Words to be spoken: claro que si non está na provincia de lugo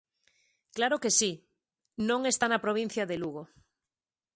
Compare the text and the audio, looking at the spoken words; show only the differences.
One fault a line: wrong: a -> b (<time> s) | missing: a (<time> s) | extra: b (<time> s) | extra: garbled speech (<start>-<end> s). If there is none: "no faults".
no faults